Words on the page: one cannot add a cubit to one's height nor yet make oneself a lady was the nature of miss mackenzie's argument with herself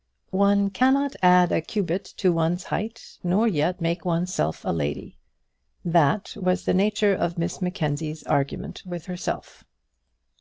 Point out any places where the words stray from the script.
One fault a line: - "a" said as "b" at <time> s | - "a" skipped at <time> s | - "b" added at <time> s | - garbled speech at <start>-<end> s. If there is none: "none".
- "that" added at 5.8 s